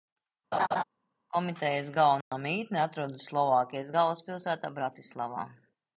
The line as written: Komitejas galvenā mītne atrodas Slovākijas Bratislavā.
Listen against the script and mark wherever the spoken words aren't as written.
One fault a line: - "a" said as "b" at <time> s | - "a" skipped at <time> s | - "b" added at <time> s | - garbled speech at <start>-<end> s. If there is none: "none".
- "galvaspilsētā" added at 4.0 s